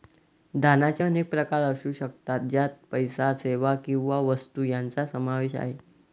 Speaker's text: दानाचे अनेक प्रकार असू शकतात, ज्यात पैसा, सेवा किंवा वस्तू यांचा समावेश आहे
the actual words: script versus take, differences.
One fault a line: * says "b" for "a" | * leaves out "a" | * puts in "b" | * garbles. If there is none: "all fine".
all fine